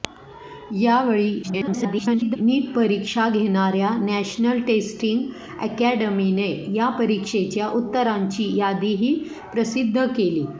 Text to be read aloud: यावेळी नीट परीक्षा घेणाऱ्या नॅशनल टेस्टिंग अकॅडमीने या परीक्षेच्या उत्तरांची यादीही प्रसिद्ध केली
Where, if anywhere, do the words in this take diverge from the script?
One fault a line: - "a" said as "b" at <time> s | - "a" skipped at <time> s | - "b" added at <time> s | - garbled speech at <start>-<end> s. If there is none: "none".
- garbled speech at 1.4-2.4 s